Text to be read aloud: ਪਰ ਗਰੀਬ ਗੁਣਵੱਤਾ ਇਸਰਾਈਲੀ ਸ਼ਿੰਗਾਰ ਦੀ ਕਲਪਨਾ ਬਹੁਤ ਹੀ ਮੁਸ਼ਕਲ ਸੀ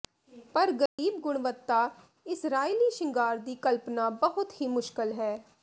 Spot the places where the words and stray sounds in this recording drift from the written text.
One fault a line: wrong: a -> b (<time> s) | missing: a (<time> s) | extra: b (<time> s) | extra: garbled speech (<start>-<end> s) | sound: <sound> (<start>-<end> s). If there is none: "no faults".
sound: dropout (0.9-1.0 s)
wrong: ਸੀ -> ਹੈ (5.1 s)